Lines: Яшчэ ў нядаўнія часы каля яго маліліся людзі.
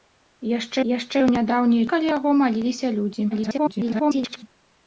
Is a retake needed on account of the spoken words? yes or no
yes